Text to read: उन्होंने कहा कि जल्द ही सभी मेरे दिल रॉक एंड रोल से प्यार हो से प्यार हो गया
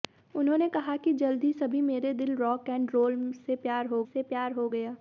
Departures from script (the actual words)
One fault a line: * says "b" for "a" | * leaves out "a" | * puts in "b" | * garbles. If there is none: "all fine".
all fine